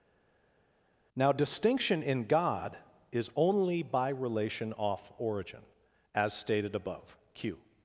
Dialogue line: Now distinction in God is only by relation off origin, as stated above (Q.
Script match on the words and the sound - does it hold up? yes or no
yes